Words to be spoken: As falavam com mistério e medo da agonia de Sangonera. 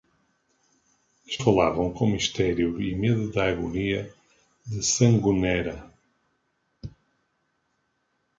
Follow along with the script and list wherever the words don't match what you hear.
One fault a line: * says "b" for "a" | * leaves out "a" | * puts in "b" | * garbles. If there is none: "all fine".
all fine